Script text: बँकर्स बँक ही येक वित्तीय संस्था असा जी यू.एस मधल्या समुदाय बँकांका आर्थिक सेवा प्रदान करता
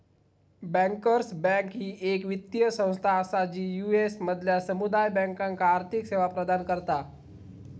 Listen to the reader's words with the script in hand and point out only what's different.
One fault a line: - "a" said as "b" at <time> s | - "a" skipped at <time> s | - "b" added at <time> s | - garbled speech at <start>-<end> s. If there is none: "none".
none